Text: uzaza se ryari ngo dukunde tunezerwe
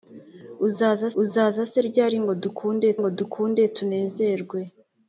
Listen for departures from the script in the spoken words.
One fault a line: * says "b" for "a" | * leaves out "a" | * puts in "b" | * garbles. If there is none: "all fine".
* puts in "uzaza"
* puts in "ngo dukunde"